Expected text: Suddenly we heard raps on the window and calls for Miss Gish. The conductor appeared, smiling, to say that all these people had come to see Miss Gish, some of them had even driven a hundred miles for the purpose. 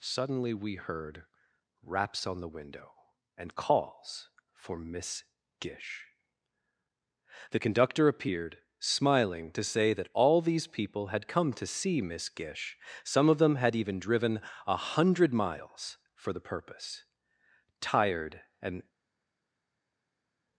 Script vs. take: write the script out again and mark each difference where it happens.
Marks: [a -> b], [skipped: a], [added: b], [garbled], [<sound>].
Suddenly we heard raps on the window and calls for Miss Gish. The conductor appeared, smiling, to say that all these people had come to see Miss Gish, some of them had even driven a hundred miles for the purpose. [added: Tired and]